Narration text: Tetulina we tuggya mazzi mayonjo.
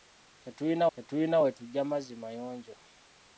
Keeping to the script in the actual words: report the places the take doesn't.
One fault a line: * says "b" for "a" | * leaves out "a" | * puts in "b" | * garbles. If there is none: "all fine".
* puts in "tetulina"